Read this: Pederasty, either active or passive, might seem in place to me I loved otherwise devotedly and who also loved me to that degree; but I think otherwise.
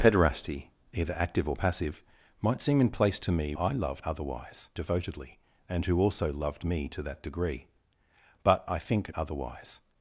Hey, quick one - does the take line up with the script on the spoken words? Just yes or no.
yes